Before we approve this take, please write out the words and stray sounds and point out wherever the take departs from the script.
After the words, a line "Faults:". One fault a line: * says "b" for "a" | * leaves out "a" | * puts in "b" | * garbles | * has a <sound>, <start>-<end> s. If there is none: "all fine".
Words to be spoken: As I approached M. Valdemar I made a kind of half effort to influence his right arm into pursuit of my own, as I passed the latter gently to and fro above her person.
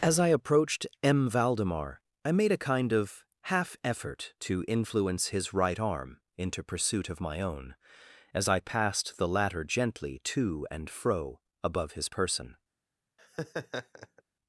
As I approached M. Valdemar I made a kind of half effort to influence his right arm into pursuit of my own, as I passed the latter gently to and fro above his person.
Faults:
* says "his" for "her"
* has a laugh, 13.2-14.2 s